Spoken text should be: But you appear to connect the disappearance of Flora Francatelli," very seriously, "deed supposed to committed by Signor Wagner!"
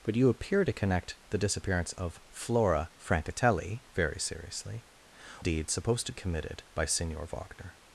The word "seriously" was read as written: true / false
true